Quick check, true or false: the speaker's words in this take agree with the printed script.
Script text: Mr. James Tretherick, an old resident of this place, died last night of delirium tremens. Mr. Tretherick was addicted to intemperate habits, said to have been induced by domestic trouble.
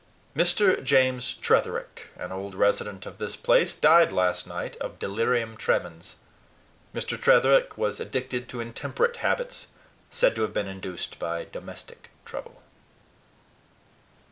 true